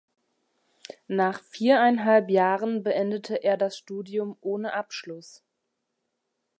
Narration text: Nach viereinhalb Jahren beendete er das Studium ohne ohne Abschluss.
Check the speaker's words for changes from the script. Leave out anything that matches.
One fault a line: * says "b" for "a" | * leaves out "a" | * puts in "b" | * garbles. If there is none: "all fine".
* leaves out "ohne"